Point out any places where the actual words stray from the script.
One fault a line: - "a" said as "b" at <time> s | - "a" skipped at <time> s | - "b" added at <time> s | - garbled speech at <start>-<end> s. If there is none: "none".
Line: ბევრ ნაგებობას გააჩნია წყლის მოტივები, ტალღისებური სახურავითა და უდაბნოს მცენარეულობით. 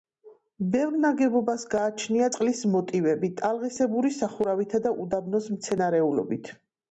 none